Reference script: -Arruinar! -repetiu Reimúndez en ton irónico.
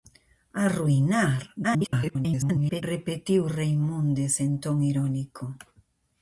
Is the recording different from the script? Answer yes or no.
yes